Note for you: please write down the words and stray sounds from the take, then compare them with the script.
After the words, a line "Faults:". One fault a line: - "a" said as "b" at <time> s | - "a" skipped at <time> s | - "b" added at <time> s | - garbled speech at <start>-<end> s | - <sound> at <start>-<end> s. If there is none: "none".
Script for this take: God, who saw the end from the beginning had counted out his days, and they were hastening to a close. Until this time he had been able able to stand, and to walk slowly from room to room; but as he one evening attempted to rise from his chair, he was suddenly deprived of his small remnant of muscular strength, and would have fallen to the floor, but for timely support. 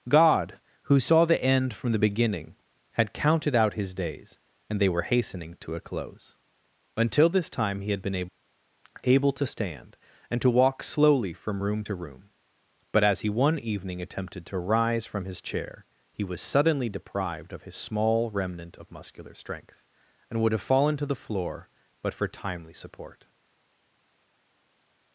God, who saw the end from the beginning had counted out his days, and they were hastening to a close. Until this time he had been able able to stand, and to walk slowly from room to room; but as he one evening attempted to rise from his chair, he was suddenly deprived of his small remnant of muscular strength, and would have fallen to the floor, but for timely support.
Faults:
none